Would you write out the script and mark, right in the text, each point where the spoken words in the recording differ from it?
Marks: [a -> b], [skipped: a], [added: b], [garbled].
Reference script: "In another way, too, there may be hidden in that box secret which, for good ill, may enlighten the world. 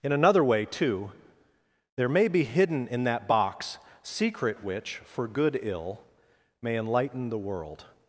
"In another way, too, there may be hidden in that box secret which, for good ill, may enlighten the world.